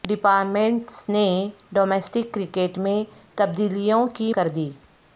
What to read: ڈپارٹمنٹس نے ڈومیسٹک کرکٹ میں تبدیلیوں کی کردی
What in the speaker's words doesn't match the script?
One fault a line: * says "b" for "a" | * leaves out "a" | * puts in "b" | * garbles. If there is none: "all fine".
all fine